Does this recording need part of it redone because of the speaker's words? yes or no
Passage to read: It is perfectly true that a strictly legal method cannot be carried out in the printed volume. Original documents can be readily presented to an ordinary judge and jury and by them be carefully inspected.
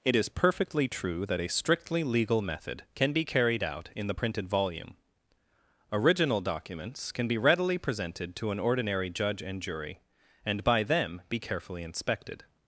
yes